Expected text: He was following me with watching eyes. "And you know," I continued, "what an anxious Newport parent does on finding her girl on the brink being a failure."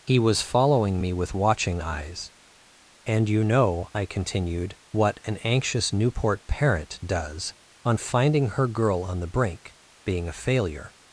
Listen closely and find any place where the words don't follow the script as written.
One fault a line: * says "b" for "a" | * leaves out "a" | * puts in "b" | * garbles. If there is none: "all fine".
all fine